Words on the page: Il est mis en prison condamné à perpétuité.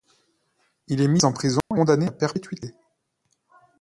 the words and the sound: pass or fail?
fail